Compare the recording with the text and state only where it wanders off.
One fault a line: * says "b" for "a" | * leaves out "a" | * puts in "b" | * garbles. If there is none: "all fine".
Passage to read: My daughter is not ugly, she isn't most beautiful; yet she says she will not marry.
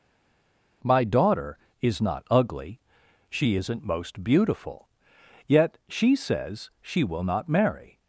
all fine